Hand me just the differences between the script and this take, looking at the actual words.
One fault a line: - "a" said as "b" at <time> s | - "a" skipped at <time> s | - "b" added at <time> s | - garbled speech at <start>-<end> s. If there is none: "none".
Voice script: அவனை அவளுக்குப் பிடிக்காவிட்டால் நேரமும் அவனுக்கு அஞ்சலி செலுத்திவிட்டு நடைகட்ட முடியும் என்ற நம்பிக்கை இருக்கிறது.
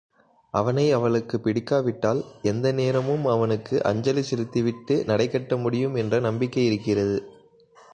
- "எந்த" added at 2.4 s